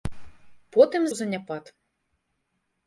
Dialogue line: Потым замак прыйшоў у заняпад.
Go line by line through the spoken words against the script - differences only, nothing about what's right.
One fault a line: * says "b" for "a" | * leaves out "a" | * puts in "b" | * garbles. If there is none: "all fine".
* leaves out "замак прыйшоў"